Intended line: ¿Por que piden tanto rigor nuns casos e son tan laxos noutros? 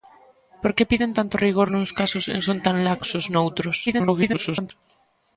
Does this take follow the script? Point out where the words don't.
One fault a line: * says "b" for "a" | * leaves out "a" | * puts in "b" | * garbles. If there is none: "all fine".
* garbles